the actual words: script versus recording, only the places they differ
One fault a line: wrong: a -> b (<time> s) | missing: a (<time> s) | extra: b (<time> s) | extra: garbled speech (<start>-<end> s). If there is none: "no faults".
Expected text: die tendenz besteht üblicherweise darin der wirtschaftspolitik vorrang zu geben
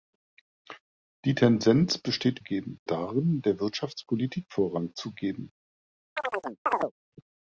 wrong: üblicherweise -> geben (2.4 s)